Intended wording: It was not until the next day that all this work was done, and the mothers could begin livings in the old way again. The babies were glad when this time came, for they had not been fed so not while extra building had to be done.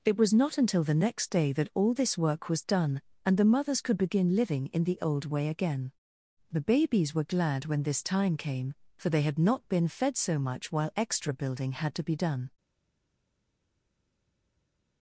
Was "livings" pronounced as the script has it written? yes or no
no